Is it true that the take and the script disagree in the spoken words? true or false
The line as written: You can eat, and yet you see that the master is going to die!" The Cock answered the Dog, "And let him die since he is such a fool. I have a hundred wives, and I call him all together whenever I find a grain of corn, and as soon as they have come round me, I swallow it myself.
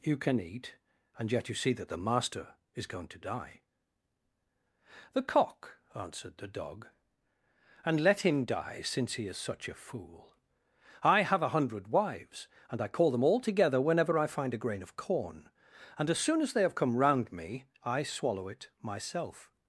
true